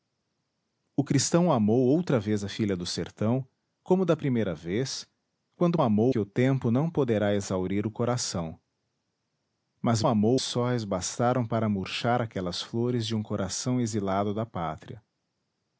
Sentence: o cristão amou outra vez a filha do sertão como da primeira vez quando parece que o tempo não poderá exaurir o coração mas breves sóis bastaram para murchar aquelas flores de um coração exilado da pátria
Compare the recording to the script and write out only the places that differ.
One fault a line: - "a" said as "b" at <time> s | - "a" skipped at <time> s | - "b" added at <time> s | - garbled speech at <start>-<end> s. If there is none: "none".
- "parece" said as "amou" at 5.8 s
- "breves" said as "amou" at 10.1 s